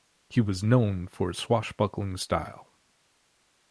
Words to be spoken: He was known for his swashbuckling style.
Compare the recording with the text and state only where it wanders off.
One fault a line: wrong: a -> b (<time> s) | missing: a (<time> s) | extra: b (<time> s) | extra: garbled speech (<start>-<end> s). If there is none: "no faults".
no faults